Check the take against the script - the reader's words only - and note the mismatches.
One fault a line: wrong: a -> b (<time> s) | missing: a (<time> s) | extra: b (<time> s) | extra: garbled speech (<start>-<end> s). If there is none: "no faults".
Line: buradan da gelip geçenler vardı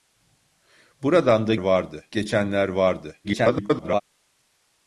wrong: gelip -> vardı (1.6 s)
extra: garbled speech (3.2-4.0 s)